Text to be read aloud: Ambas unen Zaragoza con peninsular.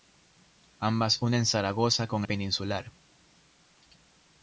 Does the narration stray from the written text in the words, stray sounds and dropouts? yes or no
no